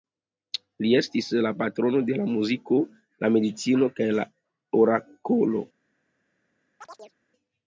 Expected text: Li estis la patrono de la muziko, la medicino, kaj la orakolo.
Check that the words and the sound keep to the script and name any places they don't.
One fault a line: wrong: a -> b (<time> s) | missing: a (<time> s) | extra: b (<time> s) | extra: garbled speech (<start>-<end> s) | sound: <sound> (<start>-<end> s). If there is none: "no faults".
sound: chirp (6.8-7.2 s)